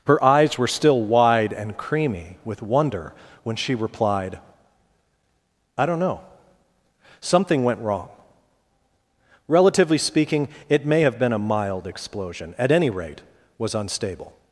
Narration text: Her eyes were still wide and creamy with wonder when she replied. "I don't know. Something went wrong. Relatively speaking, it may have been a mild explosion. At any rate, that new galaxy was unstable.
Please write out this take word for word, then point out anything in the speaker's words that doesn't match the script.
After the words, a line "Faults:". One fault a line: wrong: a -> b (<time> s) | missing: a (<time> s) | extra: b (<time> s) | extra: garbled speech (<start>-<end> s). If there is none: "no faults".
Her eyes were still wide and creamy with wonder when she replied. "I don't know. Something went wrong. Relatively speaking, it may have been a mild explosion. At any rate, was unstable.
Faults:
missing: that new galaxy (13.2 s)